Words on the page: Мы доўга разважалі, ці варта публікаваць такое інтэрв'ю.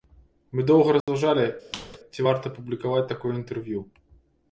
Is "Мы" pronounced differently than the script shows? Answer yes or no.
no